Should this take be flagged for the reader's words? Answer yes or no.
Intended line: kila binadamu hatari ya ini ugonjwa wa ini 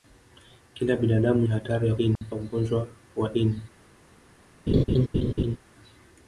no